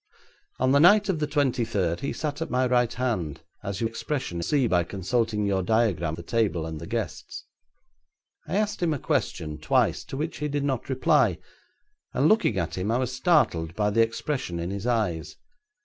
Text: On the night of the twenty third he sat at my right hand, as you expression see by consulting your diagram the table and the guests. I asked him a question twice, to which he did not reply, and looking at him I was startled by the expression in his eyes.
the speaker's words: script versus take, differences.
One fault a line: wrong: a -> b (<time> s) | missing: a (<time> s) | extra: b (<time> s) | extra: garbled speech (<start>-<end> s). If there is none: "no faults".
no faults